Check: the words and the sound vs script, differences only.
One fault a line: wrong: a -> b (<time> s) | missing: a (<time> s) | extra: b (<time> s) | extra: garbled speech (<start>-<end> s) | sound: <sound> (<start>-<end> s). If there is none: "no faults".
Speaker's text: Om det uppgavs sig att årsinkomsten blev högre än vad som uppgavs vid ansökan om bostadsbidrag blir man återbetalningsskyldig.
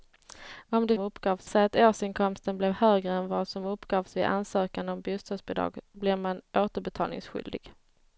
no faults